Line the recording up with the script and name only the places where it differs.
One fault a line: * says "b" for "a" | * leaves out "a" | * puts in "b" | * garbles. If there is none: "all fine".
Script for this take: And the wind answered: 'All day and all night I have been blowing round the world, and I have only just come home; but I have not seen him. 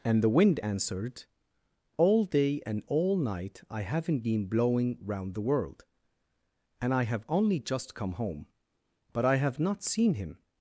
* says "haven't" for "have"